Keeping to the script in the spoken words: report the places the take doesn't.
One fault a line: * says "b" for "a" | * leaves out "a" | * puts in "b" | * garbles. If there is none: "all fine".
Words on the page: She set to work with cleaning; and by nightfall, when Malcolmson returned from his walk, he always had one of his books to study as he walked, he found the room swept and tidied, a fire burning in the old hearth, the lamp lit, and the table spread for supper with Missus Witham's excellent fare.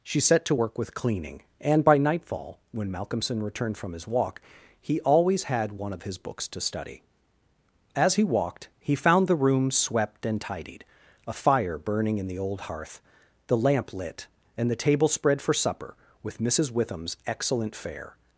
all fine